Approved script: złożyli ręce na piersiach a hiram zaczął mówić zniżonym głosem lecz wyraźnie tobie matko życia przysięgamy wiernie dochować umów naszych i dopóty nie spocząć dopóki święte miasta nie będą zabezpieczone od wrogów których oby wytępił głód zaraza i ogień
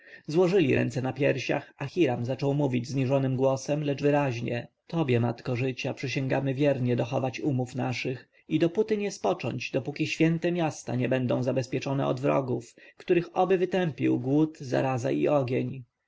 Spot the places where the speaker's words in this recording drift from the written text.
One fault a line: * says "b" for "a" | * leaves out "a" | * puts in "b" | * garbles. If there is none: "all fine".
all fine